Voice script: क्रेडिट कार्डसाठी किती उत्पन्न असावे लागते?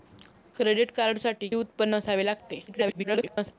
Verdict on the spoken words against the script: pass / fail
fail